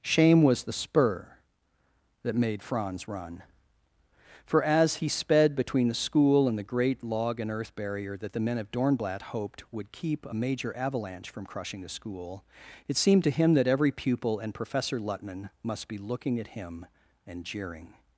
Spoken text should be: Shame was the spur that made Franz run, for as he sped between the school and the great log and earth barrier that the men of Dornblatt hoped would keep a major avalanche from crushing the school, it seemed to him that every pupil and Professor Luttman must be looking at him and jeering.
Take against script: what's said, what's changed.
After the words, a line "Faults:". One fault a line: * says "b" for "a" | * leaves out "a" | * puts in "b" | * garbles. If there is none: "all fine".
Shame was the spur that made Franz run, for as he sped between the school and the great log and earth barrier that the men of Dornblatt hoped would keep a major avalanche from crushing the school, it seemed to him that every pupil and Professor Luttman must be looking at him and jeering.
Faults:
all fine